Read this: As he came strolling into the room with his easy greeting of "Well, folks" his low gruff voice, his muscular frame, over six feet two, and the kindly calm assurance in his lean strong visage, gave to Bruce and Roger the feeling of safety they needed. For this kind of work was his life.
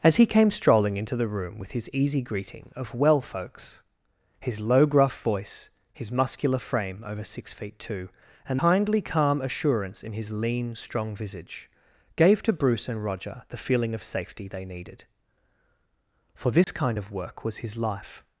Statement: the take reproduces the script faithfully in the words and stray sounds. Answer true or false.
false